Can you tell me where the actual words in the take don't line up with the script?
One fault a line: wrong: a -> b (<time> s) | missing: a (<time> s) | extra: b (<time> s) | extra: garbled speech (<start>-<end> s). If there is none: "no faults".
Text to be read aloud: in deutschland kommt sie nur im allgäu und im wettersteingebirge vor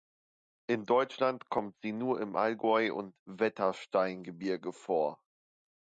missing: im (3.2 s)